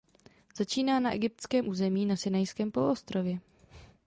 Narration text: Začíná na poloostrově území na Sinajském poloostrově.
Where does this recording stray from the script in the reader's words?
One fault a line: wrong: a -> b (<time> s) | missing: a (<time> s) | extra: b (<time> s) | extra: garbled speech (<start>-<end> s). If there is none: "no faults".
wrong: poloostrově -> egyptském (1.1 s)